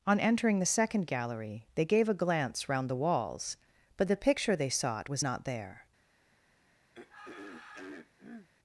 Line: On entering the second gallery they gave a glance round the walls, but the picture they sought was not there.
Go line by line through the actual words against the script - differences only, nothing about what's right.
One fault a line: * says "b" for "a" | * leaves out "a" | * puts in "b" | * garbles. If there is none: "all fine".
all fine